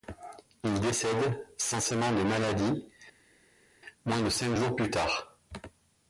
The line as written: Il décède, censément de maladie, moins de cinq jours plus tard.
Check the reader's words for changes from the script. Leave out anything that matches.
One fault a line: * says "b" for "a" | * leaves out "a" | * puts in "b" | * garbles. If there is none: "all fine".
all fine